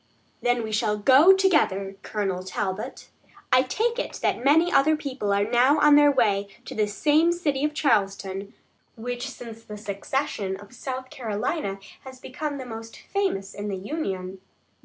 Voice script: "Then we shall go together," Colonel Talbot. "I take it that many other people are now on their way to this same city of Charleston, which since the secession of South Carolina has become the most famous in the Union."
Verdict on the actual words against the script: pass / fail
pass